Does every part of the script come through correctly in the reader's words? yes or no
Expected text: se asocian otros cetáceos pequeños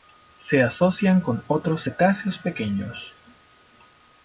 no